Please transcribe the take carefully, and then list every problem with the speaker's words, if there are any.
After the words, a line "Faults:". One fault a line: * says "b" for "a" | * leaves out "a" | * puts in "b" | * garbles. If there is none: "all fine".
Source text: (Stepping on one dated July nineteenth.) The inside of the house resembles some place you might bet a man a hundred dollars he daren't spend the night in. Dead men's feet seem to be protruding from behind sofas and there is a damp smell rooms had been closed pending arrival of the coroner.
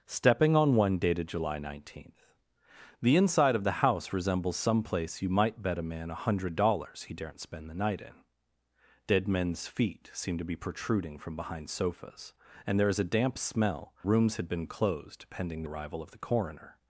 (Stepping on one dated July nineteenth.) The inside of the house resembles some place you might bet a man a hundred dollars he daren't spend the night in. Dead men's feet seem to be protruding from behind sofas and there is a damp smell rooms had been closed pending arrival of the coroner.
Faults:
all fine